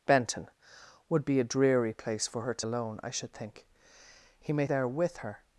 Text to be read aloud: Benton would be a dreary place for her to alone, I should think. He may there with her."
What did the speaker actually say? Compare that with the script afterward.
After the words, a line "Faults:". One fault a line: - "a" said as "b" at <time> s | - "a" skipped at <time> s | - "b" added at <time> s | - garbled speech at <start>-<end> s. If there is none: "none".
Benton would be a dreary place for her to alone, I should think. He may there with her."
Faults:
none